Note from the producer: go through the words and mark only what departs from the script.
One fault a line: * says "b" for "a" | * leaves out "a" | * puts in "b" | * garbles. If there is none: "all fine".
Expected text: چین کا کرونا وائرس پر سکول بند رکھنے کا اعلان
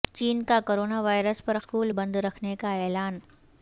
all fine